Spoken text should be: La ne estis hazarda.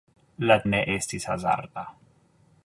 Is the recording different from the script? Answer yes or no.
no